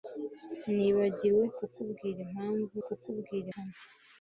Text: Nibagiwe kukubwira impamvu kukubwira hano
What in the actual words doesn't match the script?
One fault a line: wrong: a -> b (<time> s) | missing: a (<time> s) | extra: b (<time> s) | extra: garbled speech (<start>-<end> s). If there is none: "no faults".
no faults